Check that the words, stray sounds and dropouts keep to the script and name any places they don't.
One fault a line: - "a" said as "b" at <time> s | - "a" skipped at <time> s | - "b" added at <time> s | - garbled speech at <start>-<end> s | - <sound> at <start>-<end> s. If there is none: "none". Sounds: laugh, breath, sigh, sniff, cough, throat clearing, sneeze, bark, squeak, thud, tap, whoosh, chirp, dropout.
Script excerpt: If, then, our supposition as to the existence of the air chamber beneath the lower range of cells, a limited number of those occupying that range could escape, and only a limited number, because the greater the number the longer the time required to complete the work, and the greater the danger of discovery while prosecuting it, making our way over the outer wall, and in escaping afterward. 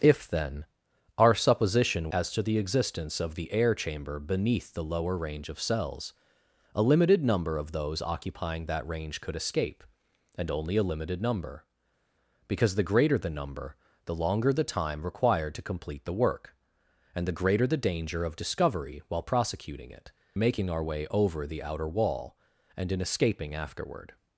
none